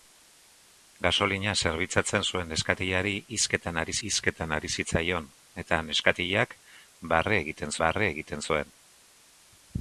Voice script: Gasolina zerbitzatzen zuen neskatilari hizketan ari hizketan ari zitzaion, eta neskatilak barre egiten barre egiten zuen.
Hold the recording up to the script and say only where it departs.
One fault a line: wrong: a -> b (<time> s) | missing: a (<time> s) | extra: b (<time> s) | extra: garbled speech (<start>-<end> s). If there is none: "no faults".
no faults